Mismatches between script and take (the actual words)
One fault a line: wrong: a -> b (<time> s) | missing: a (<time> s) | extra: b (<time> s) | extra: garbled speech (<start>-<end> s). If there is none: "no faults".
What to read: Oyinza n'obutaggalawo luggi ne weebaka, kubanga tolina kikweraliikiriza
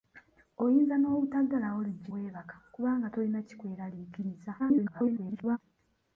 missing: ne (2.1 s)
extra: garbled speech (4.6-5.6 s)